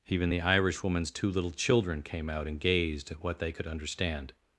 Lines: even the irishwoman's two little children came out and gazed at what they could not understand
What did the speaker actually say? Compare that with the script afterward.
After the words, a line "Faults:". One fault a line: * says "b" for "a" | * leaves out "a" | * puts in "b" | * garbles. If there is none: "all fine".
even the irishwoman's two little children came out and gazed at what they could understand
Faults:
* leaves out "not"